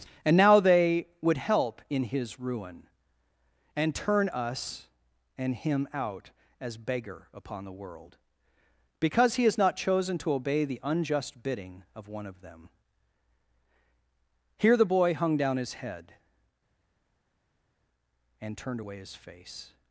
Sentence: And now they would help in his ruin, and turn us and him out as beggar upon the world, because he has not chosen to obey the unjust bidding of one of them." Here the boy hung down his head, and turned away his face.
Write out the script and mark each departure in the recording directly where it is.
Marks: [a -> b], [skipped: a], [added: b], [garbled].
And now they would help in his ruin, and turn us and him out as beggar upon the world, because he has not chosen to obey the unjust bidding of one of them." Here the boy hung down his head, and turned away his face.